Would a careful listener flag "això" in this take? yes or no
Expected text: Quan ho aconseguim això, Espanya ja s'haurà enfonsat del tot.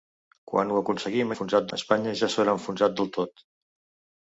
yes